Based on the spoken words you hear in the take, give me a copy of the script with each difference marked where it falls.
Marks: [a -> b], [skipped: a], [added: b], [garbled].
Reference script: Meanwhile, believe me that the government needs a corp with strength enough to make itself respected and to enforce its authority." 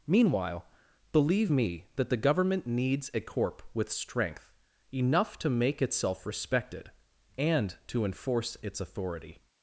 Meanwhile, believe me that the government needs a corp with strength enough to make itself respected and to enforce its authority."